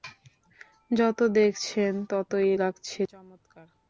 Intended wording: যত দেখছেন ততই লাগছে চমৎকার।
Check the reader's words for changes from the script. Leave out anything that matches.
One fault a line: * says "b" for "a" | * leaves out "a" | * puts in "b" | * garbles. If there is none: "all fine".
all fine